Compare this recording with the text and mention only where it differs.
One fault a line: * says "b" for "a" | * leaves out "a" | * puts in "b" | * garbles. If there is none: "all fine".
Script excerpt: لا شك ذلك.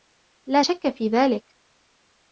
* puts in "في"